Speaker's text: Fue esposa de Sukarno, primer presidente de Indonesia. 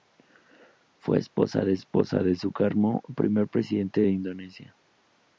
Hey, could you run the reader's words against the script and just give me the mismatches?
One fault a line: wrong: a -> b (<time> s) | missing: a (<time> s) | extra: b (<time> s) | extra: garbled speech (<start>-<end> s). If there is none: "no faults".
extra: esposa de (1.8 s)